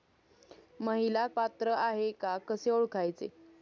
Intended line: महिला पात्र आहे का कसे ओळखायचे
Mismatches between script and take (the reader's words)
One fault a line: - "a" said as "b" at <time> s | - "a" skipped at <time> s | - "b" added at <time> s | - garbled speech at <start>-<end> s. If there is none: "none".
none